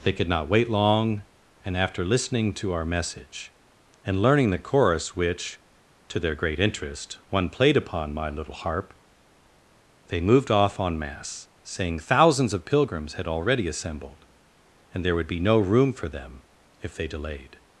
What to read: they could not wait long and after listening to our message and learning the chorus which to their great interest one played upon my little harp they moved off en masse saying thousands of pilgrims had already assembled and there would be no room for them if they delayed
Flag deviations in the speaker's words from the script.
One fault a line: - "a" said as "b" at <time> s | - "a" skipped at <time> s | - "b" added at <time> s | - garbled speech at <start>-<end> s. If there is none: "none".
none